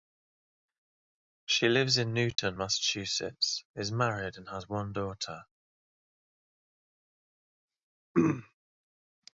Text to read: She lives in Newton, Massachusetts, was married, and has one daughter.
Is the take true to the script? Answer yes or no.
no